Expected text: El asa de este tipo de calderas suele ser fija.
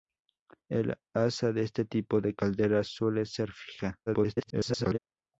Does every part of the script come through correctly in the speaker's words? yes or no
no